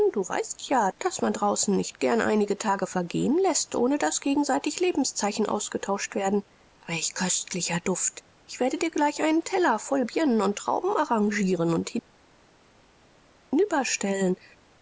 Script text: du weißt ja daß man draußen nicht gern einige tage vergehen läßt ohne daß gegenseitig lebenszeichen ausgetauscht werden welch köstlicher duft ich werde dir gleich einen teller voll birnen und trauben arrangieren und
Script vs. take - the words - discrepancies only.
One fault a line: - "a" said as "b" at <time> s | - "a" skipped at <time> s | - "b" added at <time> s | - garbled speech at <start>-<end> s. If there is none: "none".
none